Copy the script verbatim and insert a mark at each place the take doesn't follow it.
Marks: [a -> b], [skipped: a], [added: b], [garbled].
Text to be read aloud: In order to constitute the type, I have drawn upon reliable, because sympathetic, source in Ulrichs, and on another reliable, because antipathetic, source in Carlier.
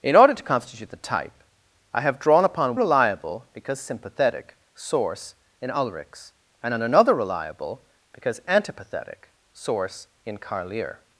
In order to constitute the type, I have drawn upon reliable, because sympathetic, source in Ulrichs, and on another reliable, because antipathetic, source in Carlier.